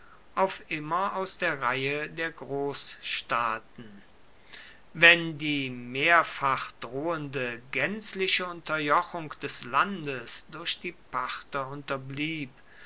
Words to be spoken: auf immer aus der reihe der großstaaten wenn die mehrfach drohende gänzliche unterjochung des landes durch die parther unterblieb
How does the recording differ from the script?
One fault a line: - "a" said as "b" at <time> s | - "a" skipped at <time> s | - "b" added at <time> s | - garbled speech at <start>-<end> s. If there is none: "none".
none